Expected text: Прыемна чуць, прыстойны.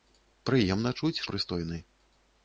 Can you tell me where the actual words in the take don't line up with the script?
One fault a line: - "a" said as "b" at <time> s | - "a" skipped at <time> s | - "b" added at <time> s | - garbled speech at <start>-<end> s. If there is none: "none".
none